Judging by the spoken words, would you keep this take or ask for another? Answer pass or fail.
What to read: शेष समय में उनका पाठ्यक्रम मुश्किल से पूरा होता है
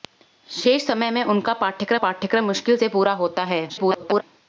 fail